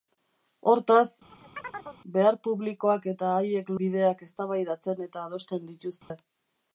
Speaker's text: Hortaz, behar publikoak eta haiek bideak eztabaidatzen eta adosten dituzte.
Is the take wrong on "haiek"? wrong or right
right